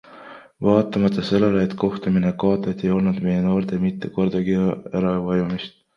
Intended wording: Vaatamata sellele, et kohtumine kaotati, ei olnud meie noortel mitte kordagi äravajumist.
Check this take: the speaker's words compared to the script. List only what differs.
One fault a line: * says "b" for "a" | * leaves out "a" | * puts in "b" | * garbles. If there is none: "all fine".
all fine